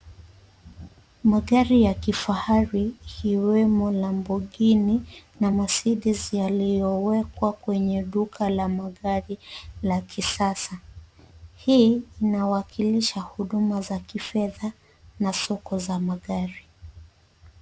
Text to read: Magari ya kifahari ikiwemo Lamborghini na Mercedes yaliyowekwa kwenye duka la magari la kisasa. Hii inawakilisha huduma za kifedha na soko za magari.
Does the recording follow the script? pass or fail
pass